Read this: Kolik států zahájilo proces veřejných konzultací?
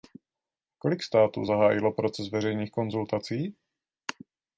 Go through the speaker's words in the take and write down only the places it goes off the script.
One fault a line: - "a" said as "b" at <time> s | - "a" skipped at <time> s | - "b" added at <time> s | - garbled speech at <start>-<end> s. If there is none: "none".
none